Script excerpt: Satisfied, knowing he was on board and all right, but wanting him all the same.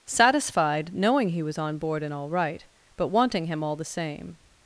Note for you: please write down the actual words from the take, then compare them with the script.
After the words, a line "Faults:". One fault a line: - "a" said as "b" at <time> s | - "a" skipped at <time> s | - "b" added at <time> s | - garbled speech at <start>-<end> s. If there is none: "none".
Satisfied, knowing he was on board and all right, but wanting him all the same.
Faults:
none